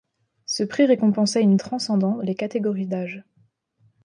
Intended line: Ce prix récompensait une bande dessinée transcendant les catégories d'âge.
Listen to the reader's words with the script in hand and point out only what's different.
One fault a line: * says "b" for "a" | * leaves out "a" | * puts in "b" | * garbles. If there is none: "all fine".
* leaves out "bande dessinée"